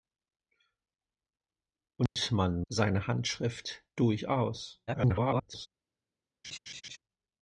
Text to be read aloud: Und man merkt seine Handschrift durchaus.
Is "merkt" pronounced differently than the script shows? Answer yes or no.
yes